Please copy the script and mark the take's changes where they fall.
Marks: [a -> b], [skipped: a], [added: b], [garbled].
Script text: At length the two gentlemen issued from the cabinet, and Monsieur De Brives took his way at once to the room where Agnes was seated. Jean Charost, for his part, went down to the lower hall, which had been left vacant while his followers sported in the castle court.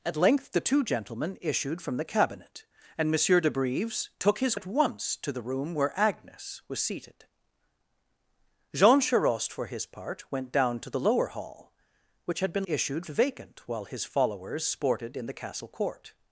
At length the two gentlemen issued from the cabinet, and Monsieur De Brives took his [skipped: way] at once to the room where Agnes was seated. Jean Charost, for his part, went down to the lower hall, which had been [left -> issued] vacant while his followers sported in the castle court.